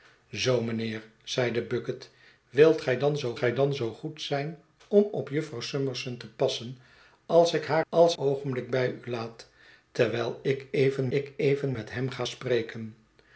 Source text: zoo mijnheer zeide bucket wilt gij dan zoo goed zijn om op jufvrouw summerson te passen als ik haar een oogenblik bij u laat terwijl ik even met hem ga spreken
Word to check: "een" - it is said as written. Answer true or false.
false